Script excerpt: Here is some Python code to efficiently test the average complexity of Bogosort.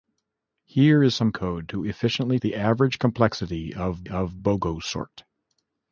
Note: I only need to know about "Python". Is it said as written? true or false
false